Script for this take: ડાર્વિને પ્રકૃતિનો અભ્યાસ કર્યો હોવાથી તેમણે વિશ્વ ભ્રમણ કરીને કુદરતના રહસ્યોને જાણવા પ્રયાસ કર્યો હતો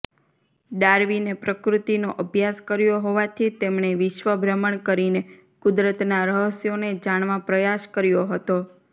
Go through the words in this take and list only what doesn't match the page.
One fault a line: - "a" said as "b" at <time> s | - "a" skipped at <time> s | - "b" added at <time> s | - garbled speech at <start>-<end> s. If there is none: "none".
none